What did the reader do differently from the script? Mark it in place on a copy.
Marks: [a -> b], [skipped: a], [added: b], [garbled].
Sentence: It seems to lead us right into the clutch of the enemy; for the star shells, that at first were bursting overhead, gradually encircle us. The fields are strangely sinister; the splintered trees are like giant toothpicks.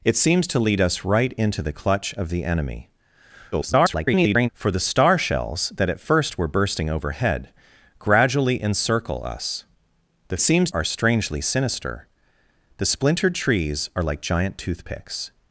It seems to lead us right into the clutch of the enemy; [garbled] for the star shells, that at first were bursting overhead, gradually encircle us. The [fields -> seems] are strangely sinister; the splintered trees are like giant toothpicks.